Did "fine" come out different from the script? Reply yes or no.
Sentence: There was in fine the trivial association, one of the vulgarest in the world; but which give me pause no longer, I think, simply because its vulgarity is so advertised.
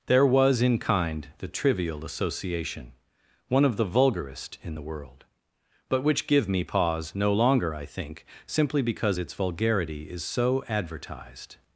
yes